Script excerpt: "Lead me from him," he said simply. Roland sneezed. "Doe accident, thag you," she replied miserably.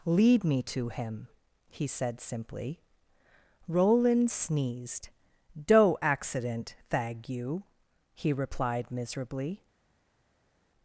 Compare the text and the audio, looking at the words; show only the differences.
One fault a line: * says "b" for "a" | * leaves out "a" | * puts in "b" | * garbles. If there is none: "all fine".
* says "to" for "from"
* says "he" for "she"